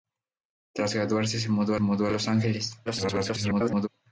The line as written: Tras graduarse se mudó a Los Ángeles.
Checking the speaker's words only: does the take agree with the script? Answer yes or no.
no